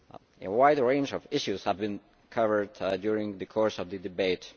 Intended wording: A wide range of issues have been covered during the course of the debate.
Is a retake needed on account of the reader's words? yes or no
no